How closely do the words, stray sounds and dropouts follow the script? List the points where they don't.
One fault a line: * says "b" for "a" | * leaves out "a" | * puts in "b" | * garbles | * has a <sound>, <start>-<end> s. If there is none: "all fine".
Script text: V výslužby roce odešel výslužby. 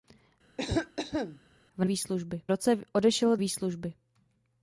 * has a cough, 0.6-1.4 s